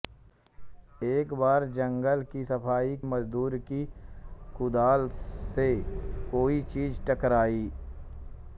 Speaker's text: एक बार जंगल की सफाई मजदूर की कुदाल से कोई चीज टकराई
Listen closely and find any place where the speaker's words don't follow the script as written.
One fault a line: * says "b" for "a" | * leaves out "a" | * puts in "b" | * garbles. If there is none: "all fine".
all fine